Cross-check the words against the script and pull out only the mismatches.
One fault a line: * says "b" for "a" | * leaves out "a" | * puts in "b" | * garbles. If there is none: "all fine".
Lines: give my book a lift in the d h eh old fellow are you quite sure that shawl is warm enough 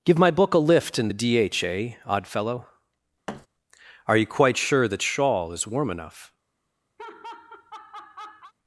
* says "odd" for "old"